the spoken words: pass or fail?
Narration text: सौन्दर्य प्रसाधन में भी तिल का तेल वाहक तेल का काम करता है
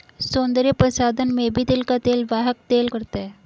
fail